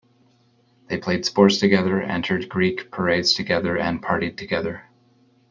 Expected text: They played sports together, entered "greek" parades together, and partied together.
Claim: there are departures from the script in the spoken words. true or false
false